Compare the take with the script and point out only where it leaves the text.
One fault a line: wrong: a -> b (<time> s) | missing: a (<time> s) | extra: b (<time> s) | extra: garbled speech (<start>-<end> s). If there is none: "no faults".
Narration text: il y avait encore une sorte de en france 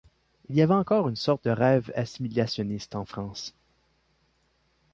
extra: rêve assimilationniste (1.5 s)